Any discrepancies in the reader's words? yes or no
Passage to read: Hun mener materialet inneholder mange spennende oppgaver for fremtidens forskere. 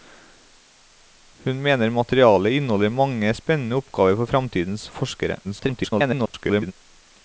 yes